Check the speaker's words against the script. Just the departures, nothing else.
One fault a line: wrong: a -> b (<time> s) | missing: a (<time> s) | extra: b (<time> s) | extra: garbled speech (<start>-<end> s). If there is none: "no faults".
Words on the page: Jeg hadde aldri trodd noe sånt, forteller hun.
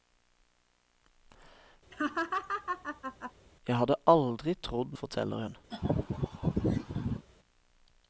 missing: noe sånt (4.9 s)